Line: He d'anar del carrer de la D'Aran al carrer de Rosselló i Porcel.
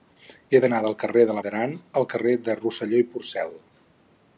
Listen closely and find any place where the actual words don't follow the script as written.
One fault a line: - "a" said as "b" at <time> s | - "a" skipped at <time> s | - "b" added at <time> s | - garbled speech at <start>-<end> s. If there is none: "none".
none